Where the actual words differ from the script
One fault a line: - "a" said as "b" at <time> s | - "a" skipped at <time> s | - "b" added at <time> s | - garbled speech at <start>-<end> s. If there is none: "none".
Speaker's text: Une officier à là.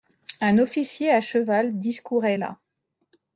- "Une" said as "Un" at 0.4 s
- "cheval discourait" added at 1.2 s